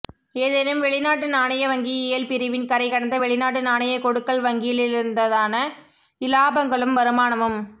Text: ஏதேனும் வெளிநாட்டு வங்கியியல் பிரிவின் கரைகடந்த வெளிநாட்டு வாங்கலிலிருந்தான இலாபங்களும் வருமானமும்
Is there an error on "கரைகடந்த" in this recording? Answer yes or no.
no